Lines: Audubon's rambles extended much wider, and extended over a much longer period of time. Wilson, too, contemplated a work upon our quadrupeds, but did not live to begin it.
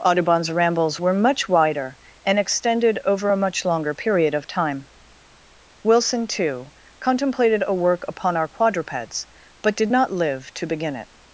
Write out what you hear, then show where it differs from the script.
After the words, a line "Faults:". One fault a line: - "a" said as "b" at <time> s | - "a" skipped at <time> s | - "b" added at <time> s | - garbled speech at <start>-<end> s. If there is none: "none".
Audubon's rambles were much wider, and extended over a much longer period of time. Wilson, too, contemplated a work upon our quadrupeds, but did not live to begin it.
Faults:
- "extended" said as "were" at 1.0 s